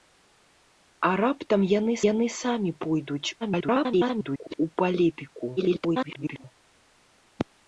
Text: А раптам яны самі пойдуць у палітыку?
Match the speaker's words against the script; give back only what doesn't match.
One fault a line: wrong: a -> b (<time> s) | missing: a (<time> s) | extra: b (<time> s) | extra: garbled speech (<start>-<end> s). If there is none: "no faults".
extra: яны (2.1 s)
extra: garbled speech (3.4-4.6 s)
extra: garbled speech (5.6-6.4 s)